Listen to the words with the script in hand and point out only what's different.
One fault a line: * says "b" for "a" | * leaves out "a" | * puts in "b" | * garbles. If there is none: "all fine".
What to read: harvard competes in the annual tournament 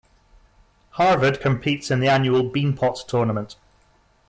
* puts in "beanpot"